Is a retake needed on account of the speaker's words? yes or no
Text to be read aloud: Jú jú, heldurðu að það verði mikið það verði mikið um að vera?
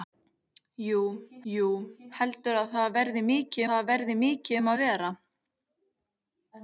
no